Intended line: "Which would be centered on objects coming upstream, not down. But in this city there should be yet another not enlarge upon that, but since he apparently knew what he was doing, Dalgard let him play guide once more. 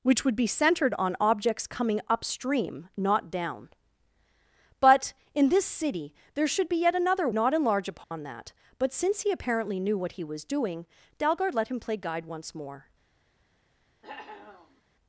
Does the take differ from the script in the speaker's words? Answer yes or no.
no